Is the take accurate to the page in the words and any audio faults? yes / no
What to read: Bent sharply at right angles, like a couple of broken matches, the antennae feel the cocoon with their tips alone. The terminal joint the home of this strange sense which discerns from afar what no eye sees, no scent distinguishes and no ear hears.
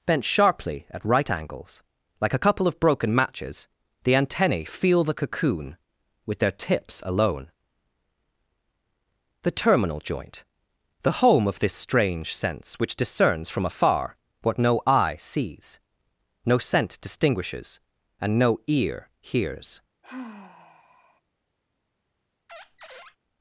no